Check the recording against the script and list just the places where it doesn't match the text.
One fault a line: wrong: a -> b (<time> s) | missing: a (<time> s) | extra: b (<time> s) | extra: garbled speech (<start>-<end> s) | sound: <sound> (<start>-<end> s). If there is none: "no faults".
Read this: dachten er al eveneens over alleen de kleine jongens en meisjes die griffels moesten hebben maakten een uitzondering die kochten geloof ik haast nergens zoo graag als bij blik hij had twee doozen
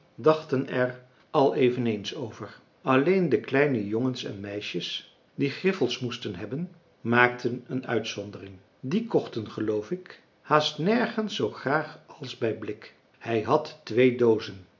no faults